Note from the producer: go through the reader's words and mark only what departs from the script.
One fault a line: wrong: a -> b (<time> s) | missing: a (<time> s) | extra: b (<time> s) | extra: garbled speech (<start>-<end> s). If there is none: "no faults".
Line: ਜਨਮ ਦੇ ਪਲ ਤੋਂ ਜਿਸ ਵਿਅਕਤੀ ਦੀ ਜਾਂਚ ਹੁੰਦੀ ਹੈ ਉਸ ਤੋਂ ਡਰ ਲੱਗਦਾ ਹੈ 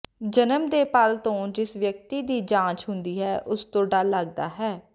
no faults